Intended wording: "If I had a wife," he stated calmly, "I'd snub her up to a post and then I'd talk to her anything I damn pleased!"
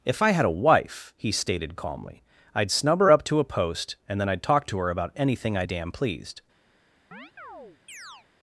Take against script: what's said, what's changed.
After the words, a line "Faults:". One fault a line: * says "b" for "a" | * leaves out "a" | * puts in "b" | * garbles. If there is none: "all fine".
"If I had a wife," he stated calmly, "I'd snub her up to a post and then I'd talk to her about anything I damn pleased!"
Faults:
* puts in "about"